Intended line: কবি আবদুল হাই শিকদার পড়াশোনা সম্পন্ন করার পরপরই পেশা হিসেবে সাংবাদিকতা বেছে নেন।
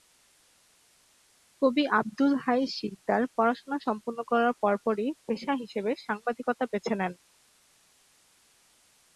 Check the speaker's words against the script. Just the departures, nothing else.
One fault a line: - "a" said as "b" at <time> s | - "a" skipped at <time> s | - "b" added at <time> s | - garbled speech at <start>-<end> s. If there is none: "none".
none